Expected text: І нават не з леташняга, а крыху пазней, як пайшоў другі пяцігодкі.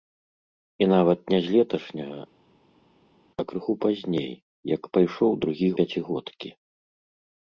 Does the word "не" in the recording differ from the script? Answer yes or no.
no